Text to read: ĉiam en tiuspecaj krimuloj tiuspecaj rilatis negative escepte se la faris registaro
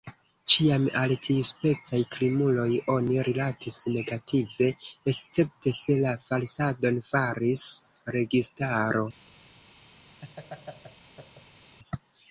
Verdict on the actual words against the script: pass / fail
fail